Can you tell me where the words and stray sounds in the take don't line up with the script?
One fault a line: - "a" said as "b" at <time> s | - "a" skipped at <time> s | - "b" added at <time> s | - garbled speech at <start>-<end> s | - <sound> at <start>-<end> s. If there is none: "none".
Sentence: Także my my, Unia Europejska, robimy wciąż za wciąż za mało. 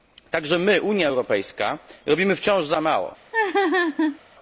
- "my" skipped at 0.8 s
- "wciąż za" skipped at 2.8 s
- laugh at 3.3-4.2 s